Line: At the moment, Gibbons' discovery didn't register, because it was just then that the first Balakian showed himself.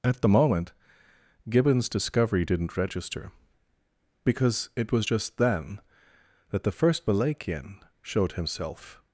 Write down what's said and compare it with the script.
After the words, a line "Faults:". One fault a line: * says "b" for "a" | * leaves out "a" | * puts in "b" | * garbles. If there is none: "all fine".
At the moment, Gibbons' discovery didn't register, because it was just then that the first Balakian showed himself.
Faults:
all fine